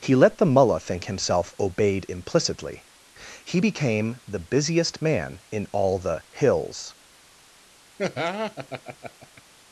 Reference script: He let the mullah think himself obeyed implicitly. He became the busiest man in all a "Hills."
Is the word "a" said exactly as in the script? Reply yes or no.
no